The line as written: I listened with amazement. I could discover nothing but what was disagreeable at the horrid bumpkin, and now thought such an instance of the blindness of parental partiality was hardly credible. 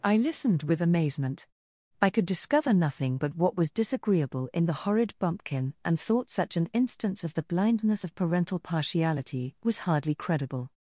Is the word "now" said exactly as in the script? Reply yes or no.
no